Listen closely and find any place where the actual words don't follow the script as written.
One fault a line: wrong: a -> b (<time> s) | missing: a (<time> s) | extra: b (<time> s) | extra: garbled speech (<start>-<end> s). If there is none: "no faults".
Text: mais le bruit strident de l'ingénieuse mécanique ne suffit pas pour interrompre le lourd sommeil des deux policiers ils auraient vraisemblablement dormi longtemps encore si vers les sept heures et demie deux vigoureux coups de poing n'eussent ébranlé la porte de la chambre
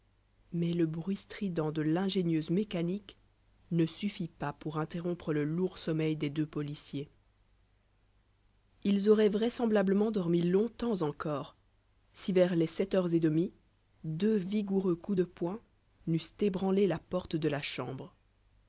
no faults